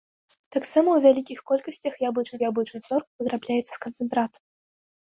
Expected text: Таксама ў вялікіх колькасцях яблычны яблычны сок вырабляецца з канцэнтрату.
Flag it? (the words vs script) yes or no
no